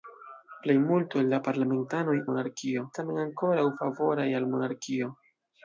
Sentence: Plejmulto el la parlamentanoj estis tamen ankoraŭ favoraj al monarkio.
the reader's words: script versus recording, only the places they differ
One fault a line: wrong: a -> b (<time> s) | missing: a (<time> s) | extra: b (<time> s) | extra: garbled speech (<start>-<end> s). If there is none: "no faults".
wrong: estis -> monarkio (2.3 s)